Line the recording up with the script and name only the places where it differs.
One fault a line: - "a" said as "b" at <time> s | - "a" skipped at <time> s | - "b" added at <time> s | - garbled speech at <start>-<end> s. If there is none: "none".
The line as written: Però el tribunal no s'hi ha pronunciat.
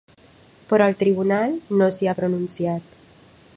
none